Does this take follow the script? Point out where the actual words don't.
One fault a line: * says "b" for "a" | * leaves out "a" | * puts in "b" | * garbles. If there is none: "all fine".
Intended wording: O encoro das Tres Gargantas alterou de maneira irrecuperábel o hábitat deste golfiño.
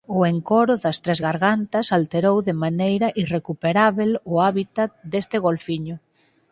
all fine